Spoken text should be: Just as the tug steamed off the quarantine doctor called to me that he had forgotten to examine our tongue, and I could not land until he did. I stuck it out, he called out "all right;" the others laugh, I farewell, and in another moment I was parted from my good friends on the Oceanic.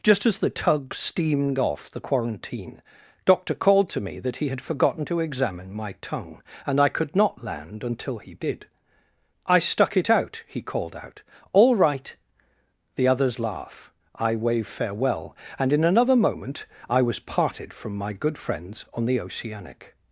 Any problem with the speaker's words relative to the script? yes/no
yes